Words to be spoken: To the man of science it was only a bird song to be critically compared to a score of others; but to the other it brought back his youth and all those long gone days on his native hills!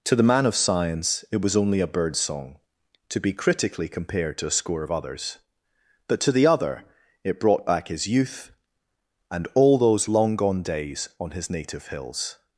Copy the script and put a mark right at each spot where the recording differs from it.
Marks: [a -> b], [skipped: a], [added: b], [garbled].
To the man of science it was only a bird song to be critically compared to a score of others; but to the other it brought back his youth and all those long gone days on his native hills!